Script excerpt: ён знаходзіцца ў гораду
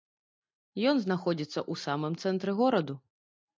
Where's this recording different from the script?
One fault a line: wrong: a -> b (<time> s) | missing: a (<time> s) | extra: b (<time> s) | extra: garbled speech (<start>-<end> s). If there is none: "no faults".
extra: самым цэнтры (1.9 s)